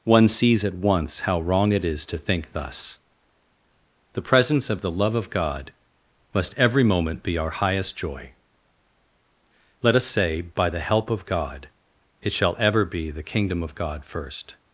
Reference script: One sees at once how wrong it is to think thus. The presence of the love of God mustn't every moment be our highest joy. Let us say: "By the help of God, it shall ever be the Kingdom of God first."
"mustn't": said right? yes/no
no